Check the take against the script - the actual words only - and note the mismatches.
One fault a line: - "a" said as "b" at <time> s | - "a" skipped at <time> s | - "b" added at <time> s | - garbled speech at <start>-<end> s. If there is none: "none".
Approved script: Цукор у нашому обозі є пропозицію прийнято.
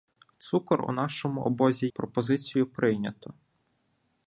- "є" skipped at 1.9 s